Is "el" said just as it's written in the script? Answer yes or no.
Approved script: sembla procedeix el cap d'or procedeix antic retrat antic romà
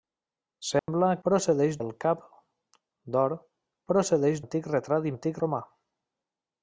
yes